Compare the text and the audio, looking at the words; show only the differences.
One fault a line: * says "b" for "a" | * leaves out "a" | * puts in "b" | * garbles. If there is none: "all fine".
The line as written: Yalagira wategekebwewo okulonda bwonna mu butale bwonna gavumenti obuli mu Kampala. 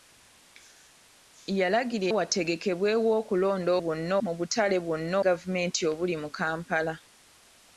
all fine